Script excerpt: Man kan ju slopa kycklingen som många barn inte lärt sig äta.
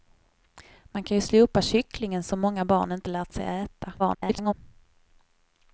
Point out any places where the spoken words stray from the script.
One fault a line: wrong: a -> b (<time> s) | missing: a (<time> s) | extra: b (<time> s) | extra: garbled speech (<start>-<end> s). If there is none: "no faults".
extra: garbled speech (4.0-4.5 s)